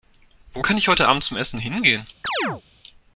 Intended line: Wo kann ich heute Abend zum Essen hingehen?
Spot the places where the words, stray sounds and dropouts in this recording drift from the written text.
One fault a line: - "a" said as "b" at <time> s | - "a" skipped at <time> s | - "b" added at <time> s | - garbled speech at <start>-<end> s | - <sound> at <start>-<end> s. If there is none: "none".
- chirp at 2.2-2.6 s